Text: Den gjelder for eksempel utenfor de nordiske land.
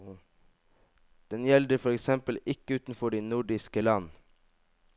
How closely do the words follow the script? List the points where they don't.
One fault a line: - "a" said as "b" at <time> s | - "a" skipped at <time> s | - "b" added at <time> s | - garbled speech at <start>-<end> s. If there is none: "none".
- "ikke" added at 2.5 s